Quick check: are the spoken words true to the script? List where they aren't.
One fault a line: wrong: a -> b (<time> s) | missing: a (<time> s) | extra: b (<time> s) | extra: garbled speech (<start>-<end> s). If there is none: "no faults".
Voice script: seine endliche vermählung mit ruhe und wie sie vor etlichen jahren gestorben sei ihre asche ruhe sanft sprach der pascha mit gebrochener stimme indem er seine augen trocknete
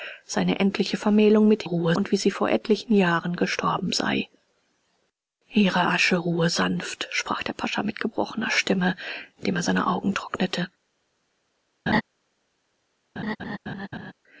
no faults